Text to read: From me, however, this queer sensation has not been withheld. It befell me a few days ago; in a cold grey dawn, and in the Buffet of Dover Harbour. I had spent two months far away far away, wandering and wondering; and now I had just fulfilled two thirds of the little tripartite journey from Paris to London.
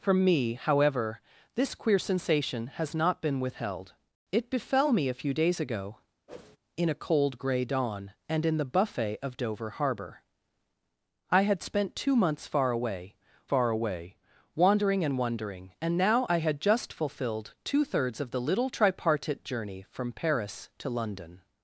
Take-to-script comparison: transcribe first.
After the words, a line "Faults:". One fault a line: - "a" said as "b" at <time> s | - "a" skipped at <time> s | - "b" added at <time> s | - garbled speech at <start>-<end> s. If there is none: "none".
From me, however, this queer sensation has not been withheld. It befell me a few days ago; in a cold grey dawn, and in the Buffet of Dover Harbour. I had spent two months far away far away, wandering and wondering; and now I had just fulfilled two thirds of the little tripartite journey from Paris to London.
Faults:
none